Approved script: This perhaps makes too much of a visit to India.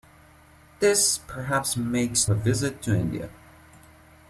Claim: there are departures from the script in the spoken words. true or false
true